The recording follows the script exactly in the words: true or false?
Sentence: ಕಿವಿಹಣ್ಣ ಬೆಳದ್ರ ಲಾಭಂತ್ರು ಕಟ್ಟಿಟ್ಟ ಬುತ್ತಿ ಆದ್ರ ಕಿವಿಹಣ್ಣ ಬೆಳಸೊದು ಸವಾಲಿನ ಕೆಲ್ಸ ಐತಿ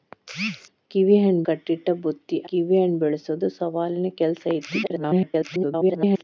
false